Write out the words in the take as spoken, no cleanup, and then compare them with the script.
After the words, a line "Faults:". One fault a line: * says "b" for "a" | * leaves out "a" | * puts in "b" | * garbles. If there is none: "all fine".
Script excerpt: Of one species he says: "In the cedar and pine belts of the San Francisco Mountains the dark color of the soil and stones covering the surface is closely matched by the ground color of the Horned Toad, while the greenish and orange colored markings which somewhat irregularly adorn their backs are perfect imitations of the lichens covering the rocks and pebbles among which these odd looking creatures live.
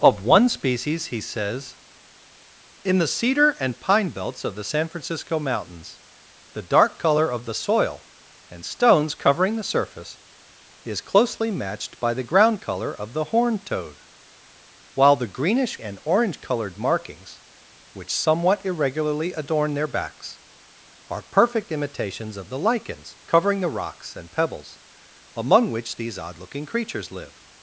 Of one species he says: "In the cedar and pine belts of the San Francisco Mountains the dark color of the soil and stones covering the surface is closely matched by the ground color of the Horned Toad, while the greenish and orange colored markings which somewhat irregularly adorn their backs are perfect imitations of the lichens covering the rocks and pebbles among which these odd looking creatures live.
Faults:
all fine